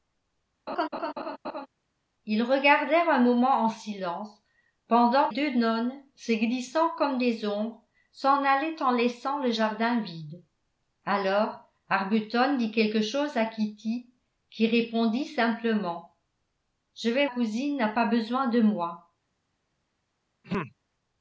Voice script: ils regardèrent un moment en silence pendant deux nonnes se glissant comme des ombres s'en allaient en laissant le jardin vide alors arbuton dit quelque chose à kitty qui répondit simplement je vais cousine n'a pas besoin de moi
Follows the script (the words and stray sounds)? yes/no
no